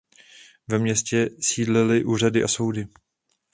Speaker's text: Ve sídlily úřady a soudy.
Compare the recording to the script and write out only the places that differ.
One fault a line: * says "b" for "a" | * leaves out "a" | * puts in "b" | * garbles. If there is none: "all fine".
* puts in "městě"